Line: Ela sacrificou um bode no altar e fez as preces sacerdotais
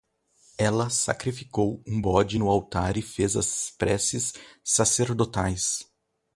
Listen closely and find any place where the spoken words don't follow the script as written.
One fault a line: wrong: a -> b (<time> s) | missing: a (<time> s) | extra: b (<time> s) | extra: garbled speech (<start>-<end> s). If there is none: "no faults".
no faults